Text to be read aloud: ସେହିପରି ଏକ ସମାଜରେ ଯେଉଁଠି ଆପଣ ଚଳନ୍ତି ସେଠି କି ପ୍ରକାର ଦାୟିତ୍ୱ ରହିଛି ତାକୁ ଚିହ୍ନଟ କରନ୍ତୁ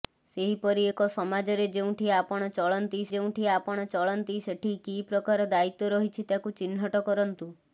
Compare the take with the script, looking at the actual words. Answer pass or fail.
fail